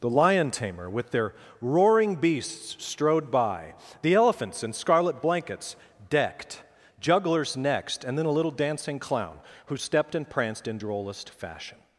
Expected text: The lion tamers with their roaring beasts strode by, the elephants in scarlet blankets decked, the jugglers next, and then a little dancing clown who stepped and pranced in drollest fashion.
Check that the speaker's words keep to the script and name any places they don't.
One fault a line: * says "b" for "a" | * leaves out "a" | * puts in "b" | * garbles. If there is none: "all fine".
* says "tamer" for "tamers"
* leaves out "the"